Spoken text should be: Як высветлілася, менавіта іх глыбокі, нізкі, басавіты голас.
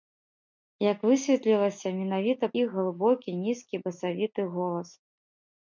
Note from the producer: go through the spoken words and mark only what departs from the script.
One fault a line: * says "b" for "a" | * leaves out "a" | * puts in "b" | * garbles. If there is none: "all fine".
all fine